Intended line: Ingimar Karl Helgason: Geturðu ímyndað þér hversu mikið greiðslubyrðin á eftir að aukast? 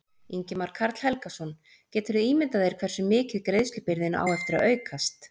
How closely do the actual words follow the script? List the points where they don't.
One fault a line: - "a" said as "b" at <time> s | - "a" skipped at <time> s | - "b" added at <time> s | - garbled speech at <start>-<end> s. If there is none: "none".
none